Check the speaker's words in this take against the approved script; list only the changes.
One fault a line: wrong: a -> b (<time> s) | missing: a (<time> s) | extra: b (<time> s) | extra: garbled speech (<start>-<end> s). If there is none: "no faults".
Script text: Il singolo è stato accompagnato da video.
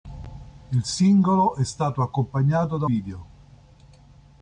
no faults